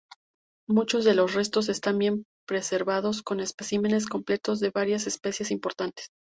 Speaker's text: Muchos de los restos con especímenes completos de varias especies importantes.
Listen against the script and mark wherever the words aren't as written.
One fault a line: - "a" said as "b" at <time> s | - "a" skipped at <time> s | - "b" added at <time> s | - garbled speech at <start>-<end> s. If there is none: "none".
- "están bien preservados" added at 1.7 s